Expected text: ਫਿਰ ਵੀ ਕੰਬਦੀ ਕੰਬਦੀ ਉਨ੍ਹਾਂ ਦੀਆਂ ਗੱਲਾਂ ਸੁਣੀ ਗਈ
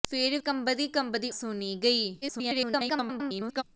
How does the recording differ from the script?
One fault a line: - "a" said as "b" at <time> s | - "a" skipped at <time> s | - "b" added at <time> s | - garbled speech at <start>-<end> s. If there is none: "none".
- "ਵੀ" skipped at 0.4 s
- "ਉਨ੍ਹਾਂ ਦੀਆਂ ਗੱਲਾਂ" skipped at 1.3 s
- garbled speech at 2.2-3.6 s